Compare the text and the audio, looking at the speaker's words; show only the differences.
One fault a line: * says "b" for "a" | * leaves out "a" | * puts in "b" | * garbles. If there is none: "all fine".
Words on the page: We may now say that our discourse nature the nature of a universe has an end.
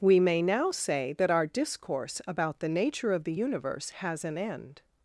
* says "about" for "nature"
* says "the" for "a"